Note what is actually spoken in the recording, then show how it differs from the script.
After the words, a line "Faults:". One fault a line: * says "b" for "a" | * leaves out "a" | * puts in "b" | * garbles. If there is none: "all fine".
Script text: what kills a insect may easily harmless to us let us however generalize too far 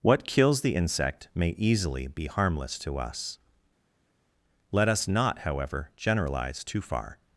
what kills the insect may easily be harmless to us let us not however generalize too far
Faults:
* says "the" for "a"
* puts in "be"
* puts in "not"